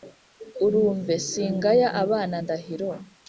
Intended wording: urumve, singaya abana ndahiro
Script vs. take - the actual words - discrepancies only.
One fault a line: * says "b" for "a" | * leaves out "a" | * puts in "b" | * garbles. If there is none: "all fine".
all fine